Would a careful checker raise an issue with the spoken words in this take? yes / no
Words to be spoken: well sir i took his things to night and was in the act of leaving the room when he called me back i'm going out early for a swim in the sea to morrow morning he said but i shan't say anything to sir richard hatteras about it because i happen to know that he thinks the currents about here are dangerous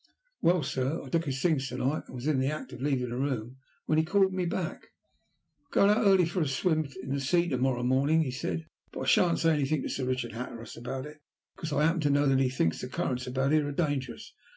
no